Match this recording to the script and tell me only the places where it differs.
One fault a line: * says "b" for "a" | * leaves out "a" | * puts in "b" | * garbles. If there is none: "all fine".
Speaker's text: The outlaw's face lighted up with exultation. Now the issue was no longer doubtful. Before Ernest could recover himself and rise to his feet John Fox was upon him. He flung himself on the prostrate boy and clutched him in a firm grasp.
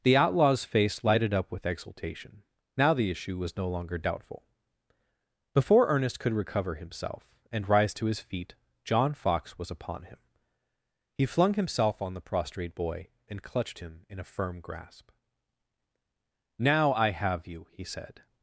* puts in "Now I have you he said"